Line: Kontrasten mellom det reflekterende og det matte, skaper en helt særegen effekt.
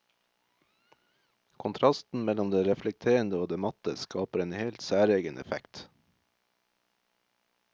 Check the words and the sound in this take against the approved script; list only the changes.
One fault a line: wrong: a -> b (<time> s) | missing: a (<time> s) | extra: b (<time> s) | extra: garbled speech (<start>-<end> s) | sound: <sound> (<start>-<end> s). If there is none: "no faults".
no faults